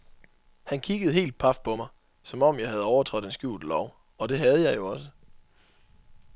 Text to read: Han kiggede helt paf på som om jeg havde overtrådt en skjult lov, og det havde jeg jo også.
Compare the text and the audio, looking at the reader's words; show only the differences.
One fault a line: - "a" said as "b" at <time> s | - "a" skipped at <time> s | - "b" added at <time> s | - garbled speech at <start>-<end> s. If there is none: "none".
- "mig" added at 1.7 s